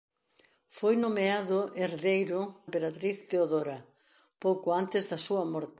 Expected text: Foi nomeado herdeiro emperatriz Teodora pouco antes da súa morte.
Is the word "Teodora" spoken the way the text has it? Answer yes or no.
yes